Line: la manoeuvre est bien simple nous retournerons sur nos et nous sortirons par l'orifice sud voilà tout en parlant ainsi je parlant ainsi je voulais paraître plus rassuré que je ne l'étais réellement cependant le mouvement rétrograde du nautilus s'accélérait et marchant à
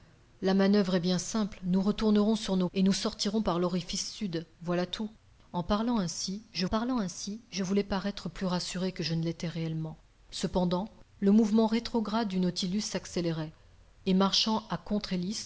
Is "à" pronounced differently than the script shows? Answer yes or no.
no